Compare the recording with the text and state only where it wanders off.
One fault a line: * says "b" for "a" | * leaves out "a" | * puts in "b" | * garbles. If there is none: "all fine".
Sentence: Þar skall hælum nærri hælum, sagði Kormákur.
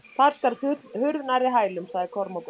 * says "hurð" for "hælum"